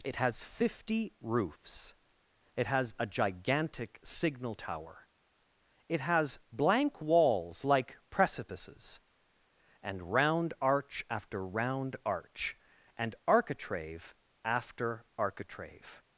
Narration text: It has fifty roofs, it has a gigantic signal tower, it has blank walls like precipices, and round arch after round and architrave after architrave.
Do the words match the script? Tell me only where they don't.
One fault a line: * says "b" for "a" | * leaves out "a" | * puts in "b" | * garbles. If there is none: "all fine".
* puts in "arch"